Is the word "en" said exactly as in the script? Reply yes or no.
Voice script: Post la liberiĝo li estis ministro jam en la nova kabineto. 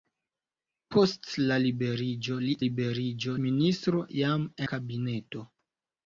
no